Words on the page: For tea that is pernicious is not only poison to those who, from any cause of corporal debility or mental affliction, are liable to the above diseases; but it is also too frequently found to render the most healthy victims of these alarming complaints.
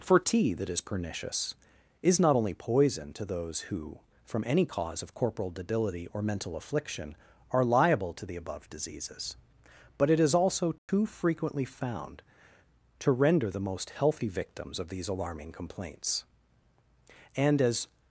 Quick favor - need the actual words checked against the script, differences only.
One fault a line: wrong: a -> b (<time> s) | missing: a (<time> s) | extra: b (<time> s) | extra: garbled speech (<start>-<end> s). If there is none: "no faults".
extra: And as (17.3 s)